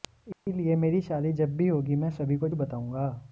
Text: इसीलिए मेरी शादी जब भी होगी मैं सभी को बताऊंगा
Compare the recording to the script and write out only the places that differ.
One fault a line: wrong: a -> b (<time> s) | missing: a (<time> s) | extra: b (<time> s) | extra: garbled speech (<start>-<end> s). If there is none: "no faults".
no faults